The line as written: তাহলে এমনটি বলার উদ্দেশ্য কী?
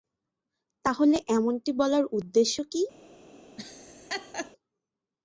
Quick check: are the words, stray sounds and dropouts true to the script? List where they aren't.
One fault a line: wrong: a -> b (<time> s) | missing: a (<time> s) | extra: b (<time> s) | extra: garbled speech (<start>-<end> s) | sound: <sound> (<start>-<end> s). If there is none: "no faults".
sound: laugh (3.6-4.5 s)